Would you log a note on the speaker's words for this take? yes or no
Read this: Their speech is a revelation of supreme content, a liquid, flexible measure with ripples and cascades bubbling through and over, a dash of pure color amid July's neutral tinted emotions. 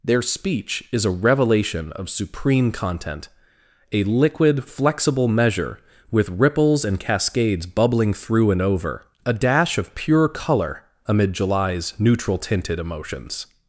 no